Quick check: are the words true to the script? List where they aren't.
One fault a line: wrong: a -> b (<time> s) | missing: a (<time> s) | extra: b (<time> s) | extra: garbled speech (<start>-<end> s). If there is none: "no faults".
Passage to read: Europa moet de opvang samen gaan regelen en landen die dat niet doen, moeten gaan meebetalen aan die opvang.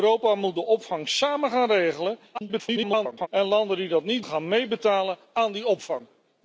extra: garbled speech (2.3-3.3 s)
missing: doen moeten (4.2 s)